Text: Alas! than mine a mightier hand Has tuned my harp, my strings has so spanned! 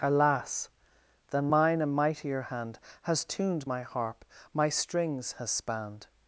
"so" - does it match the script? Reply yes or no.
no